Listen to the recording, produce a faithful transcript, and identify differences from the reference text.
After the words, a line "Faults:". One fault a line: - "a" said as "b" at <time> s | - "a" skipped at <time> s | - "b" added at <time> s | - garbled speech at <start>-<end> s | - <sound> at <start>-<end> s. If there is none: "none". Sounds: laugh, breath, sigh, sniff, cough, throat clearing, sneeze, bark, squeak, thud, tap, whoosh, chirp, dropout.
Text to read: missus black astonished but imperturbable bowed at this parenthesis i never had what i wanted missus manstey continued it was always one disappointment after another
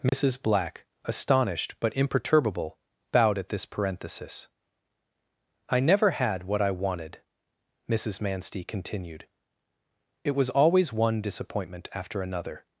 missus black astonished but imperturbable bowed at this parenthesis i never had what i wanted missus manstey continued it was always one disappointment after another
Faults:
- dropout at 0.1-0.1 s